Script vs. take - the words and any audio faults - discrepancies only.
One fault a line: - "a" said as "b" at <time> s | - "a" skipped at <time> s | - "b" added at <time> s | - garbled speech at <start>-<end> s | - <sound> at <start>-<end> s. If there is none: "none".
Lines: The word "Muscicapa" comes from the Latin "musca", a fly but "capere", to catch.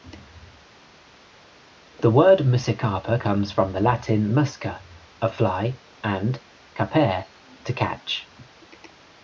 - "but" said as "and" at 6.0 s